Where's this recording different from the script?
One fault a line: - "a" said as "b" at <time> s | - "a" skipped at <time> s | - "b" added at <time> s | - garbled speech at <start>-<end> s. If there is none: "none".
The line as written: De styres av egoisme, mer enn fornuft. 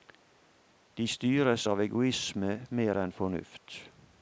none